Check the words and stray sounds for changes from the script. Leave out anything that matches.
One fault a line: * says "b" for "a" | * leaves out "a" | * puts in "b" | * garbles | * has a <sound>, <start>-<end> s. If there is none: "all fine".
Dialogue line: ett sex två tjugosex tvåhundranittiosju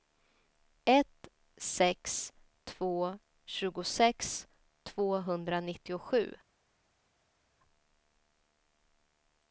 all fine